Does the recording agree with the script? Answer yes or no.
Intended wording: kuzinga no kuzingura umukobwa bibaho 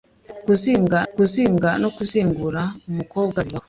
no